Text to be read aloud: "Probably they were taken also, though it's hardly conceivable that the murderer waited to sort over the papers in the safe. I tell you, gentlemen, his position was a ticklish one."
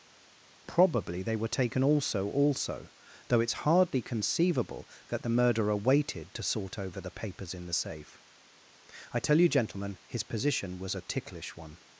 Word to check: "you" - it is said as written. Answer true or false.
true